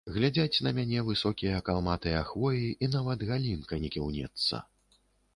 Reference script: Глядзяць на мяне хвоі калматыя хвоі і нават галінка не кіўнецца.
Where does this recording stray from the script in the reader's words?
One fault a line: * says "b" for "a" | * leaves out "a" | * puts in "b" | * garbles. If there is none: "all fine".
* says "высокія" for "хвоі"